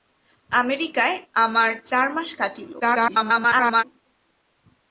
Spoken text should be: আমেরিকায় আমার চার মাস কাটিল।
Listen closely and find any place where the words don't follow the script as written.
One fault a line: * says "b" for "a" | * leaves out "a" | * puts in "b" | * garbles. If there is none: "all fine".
* garbles